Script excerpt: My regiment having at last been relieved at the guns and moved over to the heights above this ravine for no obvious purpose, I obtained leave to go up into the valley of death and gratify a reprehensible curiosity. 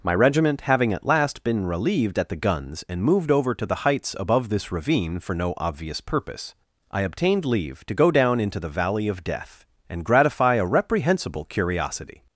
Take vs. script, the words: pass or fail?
fail